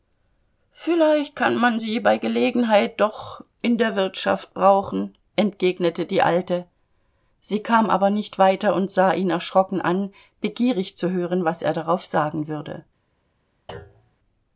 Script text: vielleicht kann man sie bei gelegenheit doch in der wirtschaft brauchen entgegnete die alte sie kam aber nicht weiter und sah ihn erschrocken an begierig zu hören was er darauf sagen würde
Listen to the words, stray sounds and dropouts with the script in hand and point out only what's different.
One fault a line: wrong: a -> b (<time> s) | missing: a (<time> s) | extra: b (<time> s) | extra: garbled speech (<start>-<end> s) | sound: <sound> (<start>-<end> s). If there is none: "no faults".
sound: thud (13.7-14.2 s)